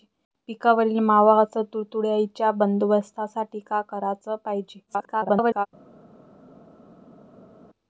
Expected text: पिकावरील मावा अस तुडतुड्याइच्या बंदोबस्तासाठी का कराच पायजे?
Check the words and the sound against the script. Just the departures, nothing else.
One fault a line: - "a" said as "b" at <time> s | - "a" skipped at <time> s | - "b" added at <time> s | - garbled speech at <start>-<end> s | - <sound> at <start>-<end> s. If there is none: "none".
- garbled speech at 4.9-5.7 s